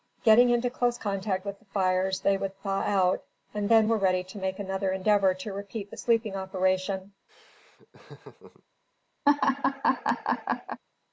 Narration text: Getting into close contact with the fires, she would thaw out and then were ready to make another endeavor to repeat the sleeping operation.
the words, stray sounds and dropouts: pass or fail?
fail